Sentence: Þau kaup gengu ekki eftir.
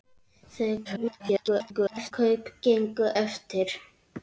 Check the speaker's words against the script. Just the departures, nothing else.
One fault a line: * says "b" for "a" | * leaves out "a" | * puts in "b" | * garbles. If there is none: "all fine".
* garbles
* leaves out "ekki"